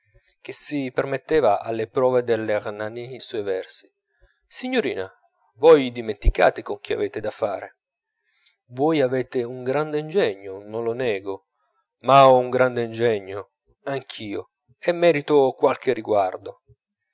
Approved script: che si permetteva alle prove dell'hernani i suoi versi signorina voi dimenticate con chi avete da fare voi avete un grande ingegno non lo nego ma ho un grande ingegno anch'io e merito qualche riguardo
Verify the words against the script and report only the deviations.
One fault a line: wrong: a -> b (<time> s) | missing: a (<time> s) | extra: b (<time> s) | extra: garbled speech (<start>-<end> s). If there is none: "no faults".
no faults